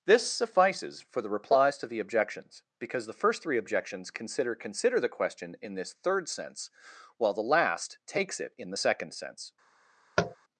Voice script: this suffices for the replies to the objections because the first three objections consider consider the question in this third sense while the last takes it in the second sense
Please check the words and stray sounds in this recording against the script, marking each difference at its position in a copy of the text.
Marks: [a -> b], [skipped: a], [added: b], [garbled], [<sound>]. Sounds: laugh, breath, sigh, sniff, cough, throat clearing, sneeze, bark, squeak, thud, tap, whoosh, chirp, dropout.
this suffices for the replies to the objections because the first three objections consider consider the question in this third sense while the last takes it in the second sense [tap]